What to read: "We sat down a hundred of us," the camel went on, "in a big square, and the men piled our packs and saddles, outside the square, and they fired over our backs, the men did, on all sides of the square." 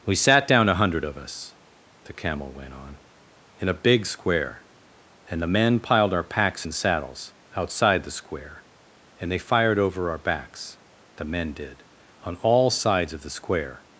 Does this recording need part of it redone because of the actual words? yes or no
no